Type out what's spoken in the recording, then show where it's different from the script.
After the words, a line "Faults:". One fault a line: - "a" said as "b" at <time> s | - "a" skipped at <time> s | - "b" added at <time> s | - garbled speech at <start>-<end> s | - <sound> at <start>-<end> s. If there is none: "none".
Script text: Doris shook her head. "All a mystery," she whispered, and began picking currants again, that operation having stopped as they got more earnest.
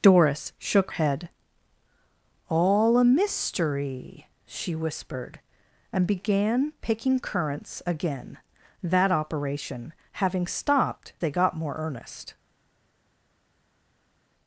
Doris shook head. "All a mystery," she whispered, and began picking currants again, that operation having stopped they got more earnest.
Faults:
- "her" skipped at 0.9 s
- "as" skipped at 11.1 s